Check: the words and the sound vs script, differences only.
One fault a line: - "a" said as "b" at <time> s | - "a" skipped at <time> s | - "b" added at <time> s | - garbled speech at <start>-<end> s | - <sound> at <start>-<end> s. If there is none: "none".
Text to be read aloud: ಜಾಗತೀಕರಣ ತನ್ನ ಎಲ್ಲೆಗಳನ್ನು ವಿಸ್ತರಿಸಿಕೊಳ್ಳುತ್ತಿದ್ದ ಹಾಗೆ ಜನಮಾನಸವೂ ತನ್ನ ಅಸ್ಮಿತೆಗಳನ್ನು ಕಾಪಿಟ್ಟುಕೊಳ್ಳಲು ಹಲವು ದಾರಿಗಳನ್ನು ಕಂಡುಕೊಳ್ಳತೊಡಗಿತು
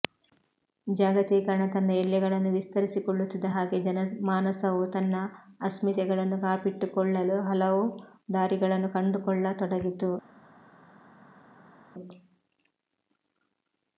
none